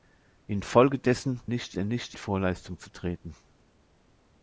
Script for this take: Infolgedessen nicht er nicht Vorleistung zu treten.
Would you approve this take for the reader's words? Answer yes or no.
yes